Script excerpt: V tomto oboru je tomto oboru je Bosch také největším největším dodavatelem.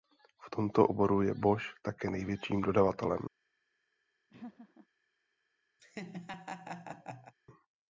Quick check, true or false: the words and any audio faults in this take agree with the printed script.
false